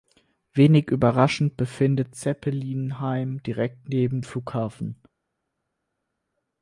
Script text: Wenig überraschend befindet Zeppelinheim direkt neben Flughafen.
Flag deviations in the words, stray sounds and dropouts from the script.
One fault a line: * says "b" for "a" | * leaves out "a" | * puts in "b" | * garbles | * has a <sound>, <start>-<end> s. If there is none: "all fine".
all fine